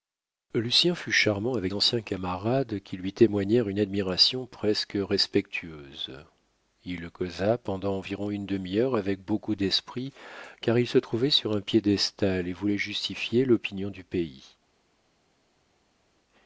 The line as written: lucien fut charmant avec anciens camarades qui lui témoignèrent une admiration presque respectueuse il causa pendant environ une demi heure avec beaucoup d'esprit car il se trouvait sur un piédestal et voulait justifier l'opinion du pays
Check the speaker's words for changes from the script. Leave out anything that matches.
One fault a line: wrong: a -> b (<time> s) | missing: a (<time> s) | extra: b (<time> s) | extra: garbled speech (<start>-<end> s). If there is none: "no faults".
no faults